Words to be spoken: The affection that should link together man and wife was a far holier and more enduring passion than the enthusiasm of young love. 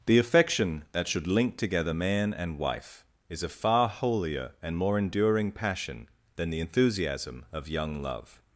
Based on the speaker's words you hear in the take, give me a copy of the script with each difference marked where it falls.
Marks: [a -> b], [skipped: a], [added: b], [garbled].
The affection that should link together man and wife [was -> is] a far holier and more enduring passion than the enthusiasm of young love.